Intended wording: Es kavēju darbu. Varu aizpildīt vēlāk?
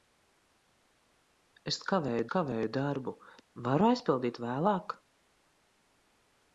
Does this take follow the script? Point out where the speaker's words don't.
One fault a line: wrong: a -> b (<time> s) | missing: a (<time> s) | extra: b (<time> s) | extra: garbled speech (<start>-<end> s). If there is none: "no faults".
extra: kavēju (2.3 s)